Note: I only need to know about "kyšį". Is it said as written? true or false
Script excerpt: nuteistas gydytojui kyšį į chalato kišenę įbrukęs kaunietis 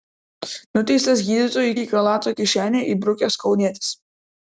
false